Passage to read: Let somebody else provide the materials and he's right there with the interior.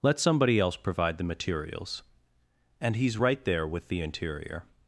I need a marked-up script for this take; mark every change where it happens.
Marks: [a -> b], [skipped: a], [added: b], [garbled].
Let somebody else provide the materials and he's right there with the interior.